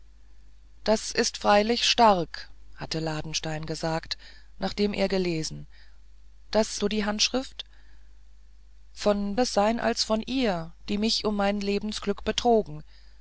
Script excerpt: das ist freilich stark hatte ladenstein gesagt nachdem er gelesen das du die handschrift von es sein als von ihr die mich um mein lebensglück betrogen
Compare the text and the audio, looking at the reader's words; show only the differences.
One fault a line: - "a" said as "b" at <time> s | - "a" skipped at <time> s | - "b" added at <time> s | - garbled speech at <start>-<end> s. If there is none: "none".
none